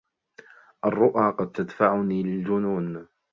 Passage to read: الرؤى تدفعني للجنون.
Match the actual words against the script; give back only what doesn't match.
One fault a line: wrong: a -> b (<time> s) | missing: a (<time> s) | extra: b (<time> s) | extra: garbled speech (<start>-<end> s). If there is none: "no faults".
extra: قد (1.4 s)